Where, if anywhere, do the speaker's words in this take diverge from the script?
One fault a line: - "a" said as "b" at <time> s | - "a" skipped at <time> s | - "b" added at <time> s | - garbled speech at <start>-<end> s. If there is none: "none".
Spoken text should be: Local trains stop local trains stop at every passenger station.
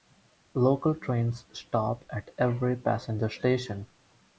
- "local trains stop" skipped at 2.0 s